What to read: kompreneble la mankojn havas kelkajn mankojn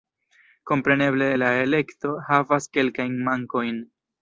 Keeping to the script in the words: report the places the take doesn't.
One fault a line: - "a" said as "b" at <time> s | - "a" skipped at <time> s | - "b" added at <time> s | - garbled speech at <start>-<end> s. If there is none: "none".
- "mankojn" said as "elekto" at 1.7 s